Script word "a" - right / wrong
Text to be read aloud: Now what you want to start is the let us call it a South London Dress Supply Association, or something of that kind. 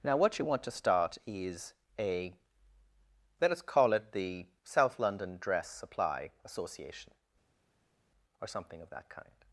wrong